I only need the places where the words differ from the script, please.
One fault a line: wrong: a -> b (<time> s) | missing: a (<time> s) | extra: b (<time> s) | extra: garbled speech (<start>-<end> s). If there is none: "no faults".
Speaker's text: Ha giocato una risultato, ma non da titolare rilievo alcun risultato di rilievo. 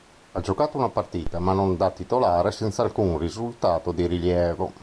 wrong: risultato -> partita (0.9 s)
wrong: rilievo -> senza (2.5 s)